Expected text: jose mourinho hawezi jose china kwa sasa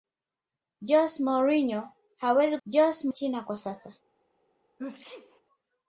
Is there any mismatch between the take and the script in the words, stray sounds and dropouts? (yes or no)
yes